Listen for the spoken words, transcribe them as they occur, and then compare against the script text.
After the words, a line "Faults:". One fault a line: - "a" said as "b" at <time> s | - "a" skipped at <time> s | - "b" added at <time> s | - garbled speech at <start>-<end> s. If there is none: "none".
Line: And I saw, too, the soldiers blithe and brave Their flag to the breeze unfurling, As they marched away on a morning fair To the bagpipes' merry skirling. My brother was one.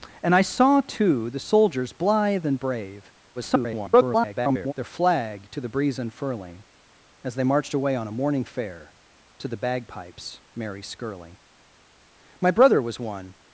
And I saw, too, the soldiers blithe and brave [garbled] Their flag to the breeze unfurling, As they marched away on a morning fair To the bagpipes' merry skirling. My brother was one.
Faults:
- garbled speech at 3.4-4.7 s